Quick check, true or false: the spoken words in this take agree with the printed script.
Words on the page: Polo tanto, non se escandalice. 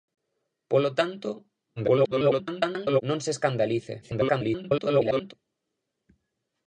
false